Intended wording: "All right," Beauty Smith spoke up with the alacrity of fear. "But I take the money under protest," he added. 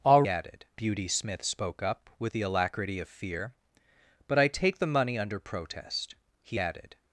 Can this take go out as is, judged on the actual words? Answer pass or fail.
fail